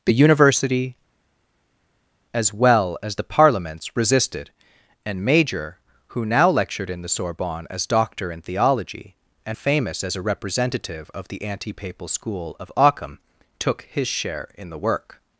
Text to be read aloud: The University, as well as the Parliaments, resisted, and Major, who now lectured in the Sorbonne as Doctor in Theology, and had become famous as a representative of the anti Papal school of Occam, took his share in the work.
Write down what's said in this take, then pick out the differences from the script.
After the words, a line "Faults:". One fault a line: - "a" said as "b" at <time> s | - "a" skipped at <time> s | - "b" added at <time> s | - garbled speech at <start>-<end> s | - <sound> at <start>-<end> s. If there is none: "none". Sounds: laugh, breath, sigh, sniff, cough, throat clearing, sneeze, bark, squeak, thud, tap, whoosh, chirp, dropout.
The University, as well as the Parliaments, resisted, and Major, who now lectured in the Sorbonne as Doctor in Theology, and famous as a representative of the anti Papal school of Occam, took his share in the work.
Faults:
- "had become" skipped at 9.6 s